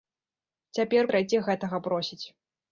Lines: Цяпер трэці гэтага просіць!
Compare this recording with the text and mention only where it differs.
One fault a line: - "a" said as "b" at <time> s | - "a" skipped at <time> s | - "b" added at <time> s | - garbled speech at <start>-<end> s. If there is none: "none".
none